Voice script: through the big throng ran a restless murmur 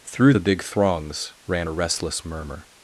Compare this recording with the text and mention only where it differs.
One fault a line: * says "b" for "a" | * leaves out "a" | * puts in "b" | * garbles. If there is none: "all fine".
* says "throngs" for "throng"